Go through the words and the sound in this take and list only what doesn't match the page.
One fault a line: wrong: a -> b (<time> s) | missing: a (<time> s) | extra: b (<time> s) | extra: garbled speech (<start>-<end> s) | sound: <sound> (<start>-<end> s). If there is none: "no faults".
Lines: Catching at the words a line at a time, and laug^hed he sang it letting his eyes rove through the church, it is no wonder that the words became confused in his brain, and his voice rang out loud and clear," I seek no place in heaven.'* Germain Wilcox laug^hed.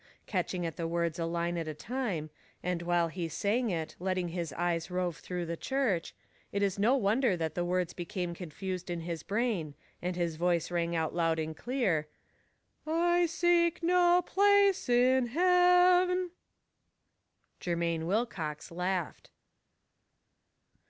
wrong: laug^hed -> while (2.8 s)